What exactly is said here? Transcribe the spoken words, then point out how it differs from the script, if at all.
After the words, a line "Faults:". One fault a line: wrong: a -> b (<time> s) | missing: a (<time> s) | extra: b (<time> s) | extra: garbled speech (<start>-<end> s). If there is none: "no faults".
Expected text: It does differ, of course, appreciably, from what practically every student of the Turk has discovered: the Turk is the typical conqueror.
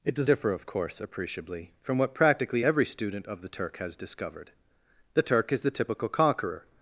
It does differ, of course, appreciably, from what practically every student of the Turk has discovered: the Turk is the typical conqueror.
Faults:
no faults